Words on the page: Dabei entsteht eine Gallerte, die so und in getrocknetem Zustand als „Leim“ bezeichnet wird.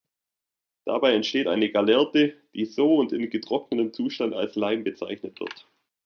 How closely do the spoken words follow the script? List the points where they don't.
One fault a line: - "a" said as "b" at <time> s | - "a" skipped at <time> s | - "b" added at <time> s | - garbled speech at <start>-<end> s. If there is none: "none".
none